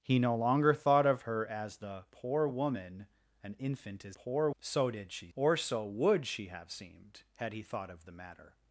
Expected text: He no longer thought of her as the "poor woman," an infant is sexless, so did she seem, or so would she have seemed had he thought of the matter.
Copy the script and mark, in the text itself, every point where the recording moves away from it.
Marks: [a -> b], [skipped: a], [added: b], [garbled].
He no longer thought of her as the "poor woman," an infant is [sexless, -> poor] so did she [skipped: seem,] or so would she have seemed had he thought of the matter.